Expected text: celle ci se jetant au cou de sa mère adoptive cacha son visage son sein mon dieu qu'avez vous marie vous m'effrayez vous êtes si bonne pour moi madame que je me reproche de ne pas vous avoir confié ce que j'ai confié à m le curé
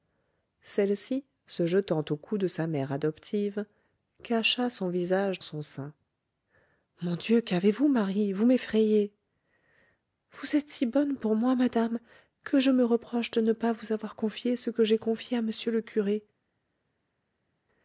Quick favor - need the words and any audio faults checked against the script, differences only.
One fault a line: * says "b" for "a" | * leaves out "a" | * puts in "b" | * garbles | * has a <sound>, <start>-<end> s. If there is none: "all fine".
all fine